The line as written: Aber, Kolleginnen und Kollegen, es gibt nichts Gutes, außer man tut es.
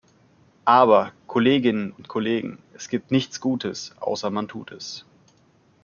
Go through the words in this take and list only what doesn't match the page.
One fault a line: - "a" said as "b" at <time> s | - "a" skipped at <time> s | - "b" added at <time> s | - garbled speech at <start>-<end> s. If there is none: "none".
none